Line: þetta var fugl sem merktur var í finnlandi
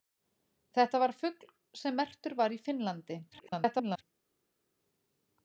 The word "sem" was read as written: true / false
true